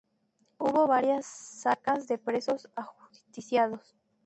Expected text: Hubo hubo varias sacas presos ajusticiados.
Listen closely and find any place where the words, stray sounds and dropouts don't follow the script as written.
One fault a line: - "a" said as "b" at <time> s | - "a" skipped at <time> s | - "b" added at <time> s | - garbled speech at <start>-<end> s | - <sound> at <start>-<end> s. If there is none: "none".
- "hubo" skipped at 0.9 s
- "de" added at 2.1 s